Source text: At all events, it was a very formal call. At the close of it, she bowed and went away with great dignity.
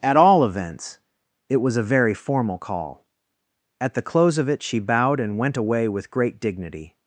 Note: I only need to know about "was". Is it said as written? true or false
true